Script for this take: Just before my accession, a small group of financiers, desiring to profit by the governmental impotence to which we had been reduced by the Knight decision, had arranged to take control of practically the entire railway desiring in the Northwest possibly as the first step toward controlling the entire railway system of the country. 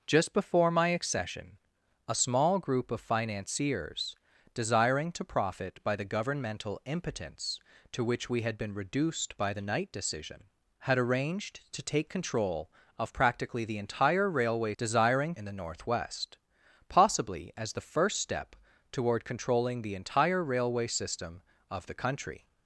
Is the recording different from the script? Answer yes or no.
no